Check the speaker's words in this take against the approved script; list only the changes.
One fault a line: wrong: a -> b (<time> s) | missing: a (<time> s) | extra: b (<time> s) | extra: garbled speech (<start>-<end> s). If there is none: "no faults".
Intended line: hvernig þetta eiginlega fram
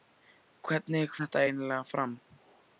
no faults